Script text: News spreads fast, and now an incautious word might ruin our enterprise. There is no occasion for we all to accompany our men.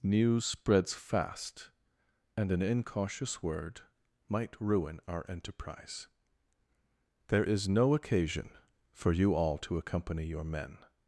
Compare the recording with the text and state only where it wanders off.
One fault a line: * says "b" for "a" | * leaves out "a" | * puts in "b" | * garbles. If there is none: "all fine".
* leaves out "now"
* says "you" for "we"
* says "your" for "our"